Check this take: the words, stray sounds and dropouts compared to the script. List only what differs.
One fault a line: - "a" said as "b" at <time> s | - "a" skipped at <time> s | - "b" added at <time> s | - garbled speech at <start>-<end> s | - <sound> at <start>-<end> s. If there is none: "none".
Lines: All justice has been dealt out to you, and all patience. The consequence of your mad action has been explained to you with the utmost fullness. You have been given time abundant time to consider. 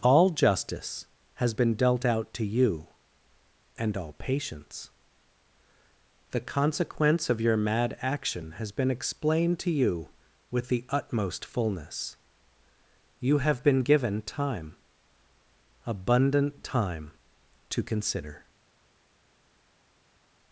none